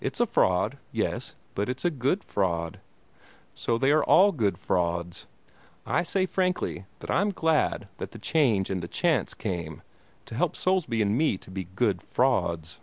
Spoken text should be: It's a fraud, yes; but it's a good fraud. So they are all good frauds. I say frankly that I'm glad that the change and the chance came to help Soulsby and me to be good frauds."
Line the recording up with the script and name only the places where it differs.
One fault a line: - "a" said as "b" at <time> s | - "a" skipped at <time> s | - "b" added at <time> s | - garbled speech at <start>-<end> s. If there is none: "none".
none